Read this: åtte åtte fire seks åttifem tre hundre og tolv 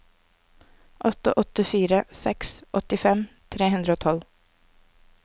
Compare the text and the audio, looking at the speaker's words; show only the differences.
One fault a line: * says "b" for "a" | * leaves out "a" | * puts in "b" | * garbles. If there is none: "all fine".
all fine